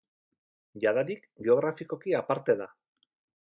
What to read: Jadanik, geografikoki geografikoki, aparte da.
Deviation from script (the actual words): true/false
true